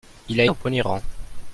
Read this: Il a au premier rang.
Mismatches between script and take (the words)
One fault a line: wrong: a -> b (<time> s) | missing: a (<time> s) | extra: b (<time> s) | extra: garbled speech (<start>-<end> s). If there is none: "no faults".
no faults